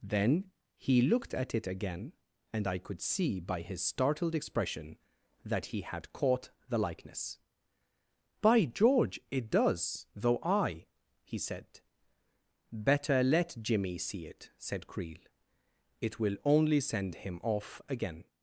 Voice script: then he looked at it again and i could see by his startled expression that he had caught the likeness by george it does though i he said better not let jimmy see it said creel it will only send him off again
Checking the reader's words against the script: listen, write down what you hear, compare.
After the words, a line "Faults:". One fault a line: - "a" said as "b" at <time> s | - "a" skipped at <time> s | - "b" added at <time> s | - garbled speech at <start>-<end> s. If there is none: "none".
then he looked at it again and i could see by his startled expression that he had caught the likeness by george it does though i he said better let jimmy see it said creel it will only send him off again
Faults:
- "not" skipped at 13.2 s